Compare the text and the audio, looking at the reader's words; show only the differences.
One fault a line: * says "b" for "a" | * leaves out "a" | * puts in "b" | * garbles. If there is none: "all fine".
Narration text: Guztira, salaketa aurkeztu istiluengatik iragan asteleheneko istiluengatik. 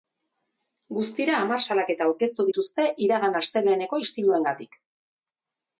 * puts in "hamar"
* says "dituzte" for "istiluengatik"